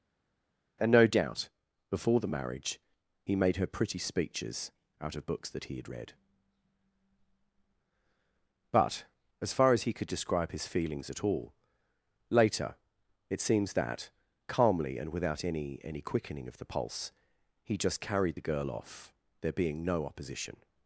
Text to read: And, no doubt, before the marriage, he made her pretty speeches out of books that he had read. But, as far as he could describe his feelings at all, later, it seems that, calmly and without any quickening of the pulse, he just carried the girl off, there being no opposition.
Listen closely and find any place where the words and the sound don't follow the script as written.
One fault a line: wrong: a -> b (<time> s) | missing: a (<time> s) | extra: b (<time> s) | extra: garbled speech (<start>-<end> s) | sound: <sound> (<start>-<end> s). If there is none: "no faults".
extra: any (15.8 s)